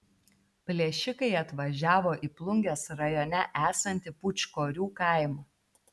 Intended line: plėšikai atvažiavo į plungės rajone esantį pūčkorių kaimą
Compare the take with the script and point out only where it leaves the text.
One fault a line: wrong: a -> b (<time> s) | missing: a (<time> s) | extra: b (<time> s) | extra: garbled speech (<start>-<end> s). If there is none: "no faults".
no faults